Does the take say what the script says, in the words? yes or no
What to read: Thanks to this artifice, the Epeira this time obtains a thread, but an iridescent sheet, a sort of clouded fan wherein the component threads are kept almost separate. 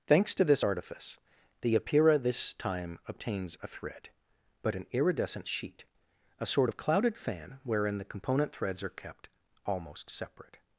yes